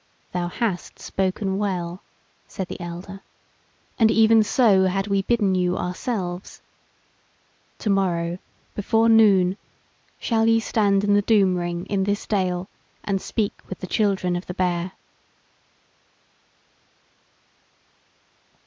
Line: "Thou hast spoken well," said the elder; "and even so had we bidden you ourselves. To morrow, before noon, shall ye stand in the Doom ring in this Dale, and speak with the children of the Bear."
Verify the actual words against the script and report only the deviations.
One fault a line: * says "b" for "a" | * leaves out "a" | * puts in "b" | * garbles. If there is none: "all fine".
all fine